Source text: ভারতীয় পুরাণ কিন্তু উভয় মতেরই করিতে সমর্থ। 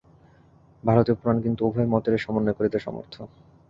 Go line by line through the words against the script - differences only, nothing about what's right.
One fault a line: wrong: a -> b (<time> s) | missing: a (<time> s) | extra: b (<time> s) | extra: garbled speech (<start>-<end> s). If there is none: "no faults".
extra: সমন্বয় (2.2 s)